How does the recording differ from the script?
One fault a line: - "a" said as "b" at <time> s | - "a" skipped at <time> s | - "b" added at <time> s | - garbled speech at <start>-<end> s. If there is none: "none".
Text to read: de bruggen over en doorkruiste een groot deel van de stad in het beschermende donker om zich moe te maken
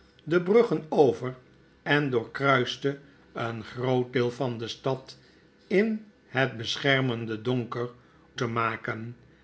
- "om zich moe" skipped at 7.9 s